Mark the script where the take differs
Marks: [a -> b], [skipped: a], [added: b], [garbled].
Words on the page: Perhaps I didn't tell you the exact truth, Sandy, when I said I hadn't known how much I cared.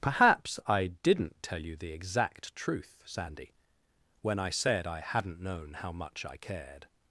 Perhaps I didn't tell you the exact truth, Sandy, when I said I hadn't known how much I cared.